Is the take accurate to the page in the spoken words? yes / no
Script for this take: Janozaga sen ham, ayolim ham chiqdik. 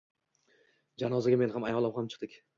no